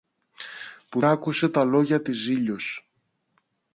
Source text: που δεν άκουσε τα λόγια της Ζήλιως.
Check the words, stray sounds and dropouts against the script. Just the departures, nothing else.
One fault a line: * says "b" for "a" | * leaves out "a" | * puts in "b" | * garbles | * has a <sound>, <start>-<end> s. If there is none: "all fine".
* leaves out "δεν"